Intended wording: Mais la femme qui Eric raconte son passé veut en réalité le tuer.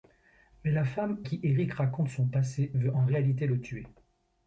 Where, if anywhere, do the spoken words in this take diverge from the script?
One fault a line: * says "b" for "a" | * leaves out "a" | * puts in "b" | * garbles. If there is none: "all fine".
all fine